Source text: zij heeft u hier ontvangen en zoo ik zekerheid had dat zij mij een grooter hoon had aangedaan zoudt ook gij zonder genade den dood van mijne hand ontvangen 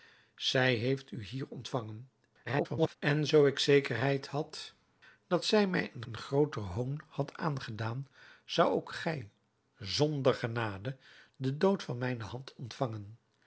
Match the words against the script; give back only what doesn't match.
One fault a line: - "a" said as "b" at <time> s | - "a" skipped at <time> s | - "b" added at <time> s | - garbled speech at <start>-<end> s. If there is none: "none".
- garbled speech at 2.5-3.0 s
- "een" added at 6.0 s